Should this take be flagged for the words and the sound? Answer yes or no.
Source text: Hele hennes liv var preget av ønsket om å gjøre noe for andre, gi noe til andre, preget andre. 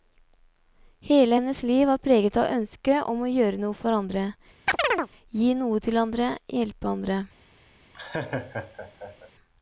yes